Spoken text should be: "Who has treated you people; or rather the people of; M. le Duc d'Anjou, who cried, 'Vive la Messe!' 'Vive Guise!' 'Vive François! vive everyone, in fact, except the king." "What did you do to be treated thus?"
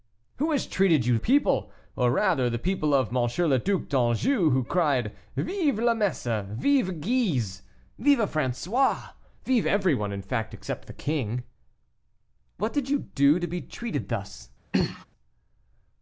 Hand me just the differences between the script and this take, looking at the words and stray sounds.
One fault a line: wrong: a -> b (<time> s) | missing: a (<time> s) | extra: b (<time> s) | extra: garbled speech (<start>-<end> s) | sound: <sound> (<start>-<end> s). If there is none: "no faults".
sound: throat clearing (14.7-15.1 s)